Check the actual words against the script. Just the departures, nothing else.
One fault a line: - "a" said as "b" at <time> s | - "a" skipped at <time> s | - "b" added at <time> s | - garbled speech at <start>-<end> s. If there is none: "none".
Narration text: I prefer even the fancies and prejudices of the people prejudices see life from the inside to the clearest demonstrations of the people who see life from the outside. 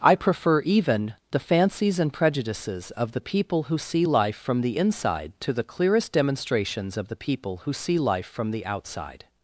- "prejudices" said as "who" at 3.6 s